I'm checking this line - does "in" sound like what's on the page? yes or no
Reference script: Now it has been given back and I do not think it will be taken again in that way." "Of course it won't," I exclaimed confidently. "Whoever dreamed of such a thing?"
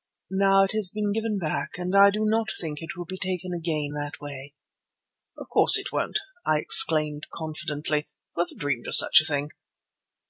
no